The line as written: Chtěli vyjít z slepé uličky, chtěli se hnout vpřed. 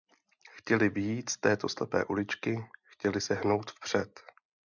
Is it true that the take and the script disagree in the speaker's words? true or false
true